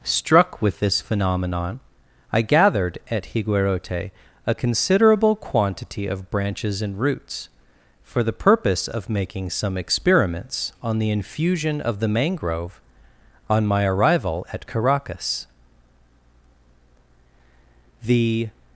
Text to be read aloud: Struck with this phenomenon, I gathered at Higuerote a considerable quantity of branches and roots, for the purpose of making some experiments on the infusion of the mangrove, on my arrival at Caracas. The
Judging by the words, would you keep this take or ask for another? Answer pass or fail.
pass